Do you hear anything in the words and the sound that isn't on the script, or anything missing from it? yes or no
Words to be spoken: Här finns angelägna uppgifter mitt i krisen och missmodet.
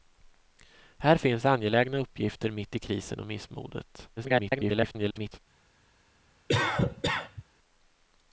yes